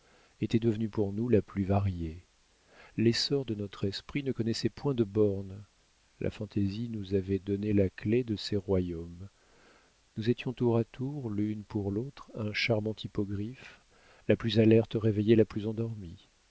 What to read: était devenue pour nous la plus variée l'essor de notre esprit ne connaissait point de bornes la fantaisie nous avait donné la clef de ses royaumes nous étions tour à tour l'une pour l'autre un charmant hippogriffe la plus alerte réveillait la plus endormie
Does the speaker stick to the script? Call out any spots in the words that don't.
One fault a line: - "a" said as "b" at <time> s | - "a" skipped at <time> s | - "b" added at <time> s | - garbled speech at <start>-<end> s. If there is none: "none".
none